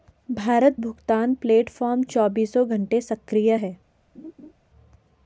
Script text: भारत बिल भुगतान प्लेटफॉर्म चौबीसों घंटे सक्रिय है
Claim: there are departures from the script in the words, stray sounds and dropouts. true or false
true